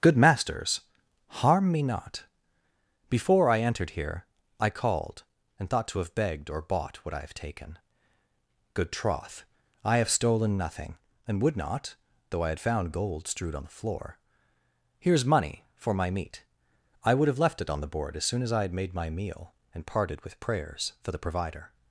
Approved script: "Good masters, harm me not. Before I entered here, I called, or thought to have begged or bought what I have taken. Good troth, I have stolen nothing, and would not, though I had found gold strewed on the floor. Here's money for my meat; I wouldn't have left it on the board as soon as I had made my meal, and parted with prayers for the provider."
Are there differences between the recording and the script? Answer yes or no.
yes